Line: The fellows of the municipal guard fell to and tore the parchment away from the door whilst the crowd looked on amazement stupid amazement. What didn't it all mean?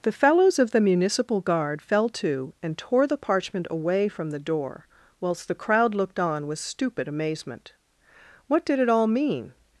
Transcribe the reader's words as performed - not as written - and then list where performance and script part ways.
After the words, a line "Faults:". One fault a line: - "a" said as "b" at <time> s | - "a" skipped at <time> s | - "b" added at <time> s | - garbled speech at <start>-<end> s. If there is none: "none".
The fellows of the municipal guard fell to and tore the parchment away from the door whilst the crowd looked on with stupid amazement. What did it all mean?
Faults:
- "amazement" said as "with" at 6.5 s
- "didn't" said as "did" at 8.7 s